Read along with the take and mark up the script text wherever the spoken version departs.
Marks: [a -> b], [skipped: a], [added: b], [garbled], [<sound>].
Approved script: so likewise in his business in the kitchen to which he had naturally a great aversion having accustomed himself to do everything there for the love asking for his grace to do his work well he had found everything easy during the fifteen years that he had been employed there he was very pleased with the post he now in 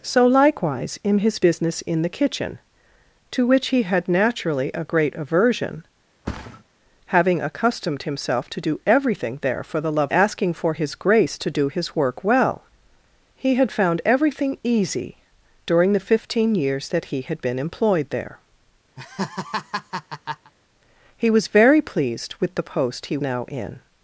so likewise in his business in the kitchen to which he had naturally a great aversion [thud] having accustomed himself to do everything there for the love asking for his grace to do his work well he had found everything easy during the fifteen years that he had been employed there [laugh] he was very pleased with the post he now in